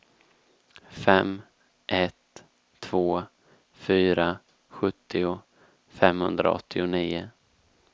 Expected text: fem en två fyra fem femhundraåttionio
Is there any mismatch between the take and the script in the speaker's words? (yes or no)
yes